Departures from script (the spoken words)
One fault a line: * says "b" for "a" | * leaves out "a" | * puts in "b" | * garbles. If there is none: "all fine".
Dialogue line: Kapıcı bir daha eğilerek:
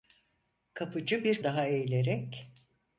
all fine